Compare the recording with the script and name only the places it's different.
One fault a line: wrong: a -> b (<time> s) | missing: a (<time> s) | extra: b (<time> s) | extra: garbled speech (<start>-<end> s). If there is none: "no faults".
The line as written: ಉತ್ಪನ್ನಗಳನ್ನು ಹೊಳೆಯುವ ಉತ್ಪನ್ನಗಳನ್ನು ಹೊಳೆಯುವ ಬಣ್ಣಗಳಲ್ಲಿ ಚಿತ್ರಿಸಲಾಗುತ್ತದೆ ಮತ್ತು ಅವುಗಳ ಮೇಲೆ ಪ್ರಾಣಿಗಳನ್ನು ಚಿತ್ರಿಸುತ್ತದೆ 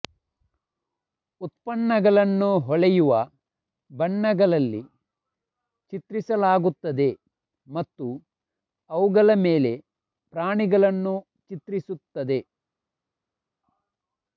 missing: ಉತ್ಪನ್ನಗಳನ್ನು ಹೊಳೆಯುವ (3.1 s)